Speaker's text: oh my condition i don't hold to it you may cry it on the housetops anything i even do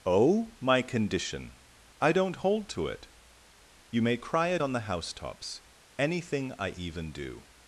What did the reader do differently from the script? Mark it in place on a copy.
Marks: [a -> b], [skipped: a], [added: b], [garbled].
oh my condition i don't hold to it you may cry it on the housetops anything i even do